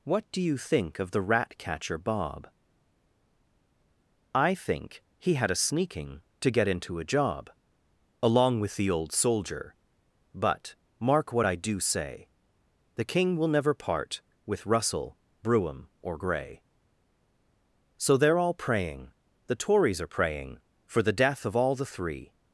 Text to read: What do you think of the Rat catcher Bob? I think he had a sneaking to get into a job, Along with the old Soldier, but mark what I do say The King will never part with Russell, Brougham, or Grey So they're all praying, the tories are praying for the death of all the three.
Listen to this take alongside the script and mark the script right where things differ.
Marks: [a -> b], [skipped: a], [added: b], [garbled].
What do you think of the Rat catcher Bob? I think he had a sneaking to get into a job, Along with the old Soldier, but mark what I do say The King will never part with Russell, Brougham, or Grey So they're all praying, the tories are praying for the death of all the three.